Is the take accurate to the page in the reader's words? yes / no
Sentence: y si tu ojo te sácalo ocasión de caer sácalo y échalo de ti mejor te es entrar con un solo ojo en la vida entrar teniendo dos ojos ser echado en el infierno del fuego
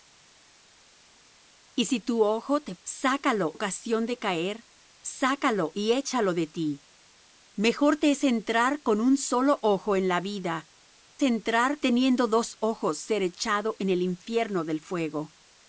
yes